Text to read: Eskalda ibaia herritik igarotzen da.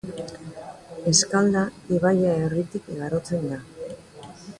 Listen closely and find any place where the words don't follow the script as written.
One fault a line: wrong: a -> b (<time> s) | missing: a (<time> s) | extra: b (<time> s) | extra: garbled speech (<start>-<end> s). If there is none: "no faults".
no faults